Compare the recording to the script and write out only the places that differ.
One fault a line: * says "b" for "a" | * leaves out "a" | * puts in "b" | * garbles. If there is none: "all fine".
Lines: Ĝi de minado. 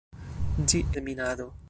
all fine